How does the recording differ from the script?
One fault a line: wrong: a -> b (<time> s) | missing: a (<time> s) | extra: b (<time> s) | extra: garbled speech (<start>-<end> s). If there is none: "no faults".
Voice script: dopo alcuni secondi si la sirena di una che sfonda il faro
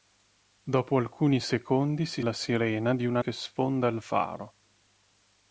no faults